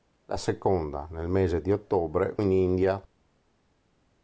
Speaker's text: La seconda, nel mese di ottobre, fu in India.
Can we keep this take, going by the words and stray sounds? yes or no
no